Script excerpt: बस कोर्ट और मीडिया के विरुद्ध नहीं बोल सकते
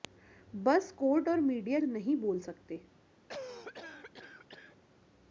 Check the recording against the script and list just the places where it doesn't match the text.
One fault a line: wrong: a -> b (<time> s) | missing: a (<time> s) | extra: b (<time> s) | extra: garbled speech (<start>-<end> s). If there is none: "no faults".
missing: के विरुद्ध (1.8 s)